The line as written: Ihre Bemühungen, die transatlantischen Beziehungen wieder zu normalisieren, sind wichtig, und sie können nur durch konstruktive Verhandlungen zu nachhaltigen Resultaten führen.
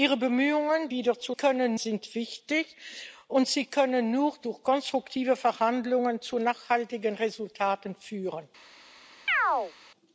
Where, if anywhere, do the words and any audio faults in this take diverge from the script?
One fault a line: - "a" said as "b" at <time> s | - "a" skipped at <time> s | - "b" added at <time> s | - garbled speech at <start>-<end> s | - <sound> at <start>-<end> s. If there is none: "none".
- "die transatlantischen Beziehungen" skipped at 0.9 s
- "normalisieren" said as "können" at 1.3 s
- chirp at 9.3-9.7 s